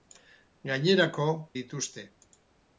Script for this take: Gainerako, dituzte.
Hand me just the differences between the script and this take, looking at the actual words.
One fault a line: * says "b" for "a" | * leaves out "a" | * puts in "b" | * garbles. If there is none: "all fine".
all fine